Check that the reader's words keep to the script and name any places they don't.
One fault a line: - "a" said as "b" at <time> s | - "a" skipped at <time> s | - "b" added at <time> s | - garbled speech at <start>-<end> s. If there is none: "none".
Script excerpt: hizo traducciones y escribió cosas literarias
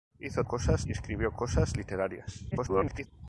- "traducciones" said as "cosas" at 0.4 s
- garbled speech at 2.5-3.1 s